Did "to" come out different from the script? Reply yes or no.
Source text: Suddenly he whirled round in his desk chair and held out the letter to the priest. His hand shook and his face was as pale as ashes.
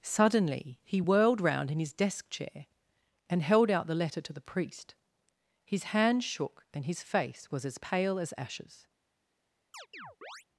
no